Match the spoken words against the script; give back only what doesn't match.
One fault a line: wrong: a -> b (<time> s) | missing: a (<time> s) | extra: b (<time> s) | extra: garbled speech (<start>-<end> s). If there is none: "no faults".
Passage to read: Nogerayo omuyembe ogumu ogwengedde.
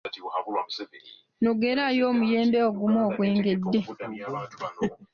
no faults